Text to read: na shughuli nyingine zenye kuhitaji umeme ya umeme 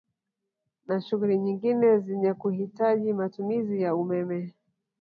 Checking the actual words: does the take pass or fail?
fail